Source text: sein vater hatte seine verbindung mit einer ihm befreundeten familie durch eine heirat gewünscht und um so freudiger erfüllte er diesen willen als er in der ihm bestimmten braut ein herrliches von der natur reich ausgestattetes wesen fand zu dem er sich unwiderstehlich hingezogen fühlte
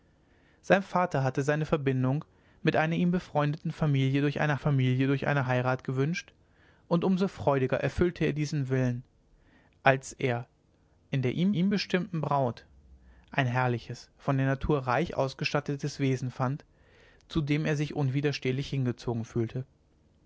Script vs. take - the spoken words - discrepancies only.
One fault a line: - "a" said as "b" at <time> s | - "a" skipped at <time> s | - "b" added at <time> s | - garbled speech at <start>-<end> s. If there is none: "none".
- "familie durch eine" added at 4.5 s
- "ihm" added at 11.5 s